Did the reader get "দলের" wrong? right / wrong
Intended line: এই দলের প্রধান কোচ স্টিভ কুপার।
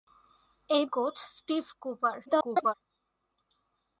wrong